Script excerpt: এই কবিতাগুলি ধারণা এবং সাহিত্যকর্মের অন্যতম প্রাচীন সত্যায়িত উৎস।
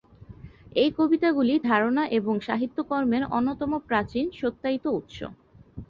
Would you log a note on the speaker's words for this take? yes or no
no